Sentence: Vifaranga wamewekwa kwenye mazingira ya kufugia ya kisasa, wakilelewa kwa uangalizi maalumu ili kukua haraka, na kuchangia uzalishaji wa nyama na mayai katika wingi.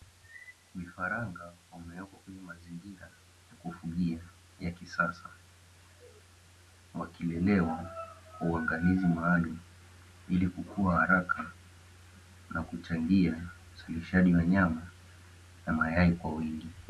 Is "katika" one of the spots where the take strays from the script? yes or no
yes